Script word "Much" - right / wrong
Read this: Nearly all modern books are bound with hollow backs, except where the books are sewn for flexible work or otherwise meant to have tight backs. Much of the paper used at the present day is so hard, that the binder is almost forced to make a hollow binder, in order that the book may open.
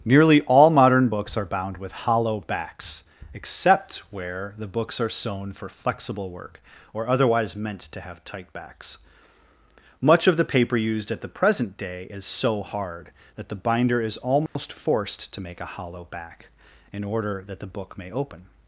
right